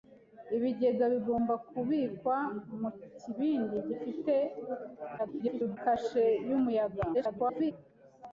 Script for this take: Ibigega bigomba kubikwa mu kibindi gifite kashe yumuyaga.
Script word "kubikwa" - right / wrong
right